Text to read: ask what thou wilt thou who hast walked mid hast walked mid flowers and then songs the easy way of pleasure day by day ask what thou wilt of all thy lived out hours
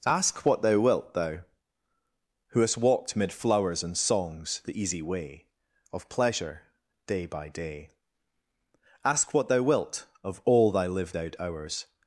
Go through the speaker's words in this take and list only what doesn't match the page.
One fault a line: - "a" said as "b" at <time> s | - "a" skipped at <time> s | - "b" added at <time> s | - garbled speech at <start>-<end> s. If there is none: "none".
- "hast walked mid" skipped at 3.3 s
- "then" skipped at 4.0 s